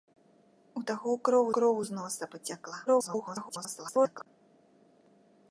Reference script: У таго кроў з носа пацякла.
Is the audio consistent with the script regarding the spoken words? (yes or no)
no